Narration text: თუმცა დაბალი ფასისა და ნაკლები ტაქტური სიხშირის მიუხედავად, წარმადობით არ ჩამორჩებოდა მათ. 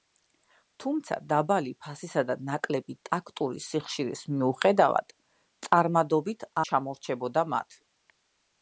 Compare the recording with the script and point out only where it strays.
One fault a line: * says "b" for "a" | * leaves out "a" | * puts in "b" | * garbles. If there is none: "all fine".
* leaves out "არ"